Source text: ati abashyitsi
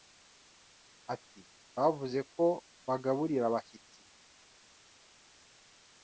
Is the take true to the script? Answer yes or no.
no